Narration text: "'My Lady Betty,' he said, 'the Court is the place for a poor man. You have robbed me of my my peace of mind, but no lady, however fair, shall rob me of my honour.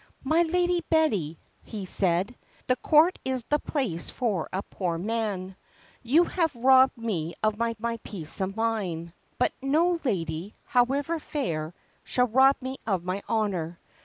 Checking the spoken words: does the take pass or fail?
pass